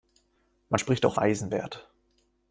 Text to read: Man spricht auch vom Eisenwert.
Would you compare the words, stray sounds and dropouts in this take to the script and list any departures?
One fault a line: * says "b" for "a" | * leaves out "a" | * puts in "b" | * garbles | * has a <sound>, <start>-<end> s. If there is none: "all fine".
* leaves out "vom"